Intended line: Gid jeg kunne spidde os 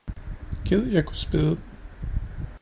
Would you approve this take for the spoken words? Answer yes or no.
no